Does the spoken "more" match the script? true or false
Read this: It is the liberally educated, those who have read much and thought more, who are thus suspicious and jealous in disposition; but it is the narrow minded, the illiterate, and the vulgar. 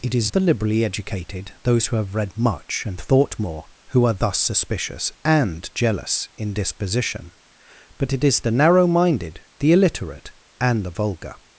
true